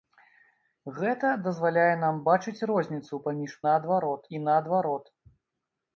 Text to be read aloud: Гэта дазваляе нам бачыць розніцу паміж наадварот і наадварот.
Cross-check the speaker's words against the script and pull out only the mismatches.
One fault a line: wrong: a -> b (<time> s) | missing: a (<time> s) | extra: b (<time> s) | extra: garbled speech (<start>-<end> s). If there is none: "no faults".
no faults